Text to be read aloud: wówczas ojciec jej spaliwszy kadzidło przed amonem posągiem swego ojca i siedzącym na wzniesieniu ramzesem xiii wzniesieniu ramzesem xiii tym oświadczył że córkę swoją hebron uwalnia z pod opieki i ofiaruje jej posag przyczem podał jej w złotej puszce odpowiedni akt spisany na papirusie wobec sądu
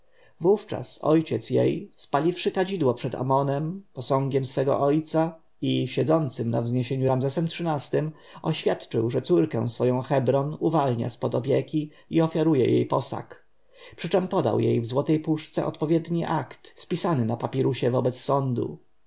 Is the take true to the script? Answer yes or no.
no